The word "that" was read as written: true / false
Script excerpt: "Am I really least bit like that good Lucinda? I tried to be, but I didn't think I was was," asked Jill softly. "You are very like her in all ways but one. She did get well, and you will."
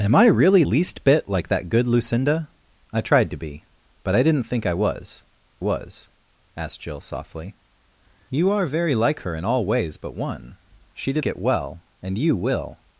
true